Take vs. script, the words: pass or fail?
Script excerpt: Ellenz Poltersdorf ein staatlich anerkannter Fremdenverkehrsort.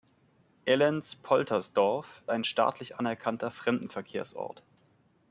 pass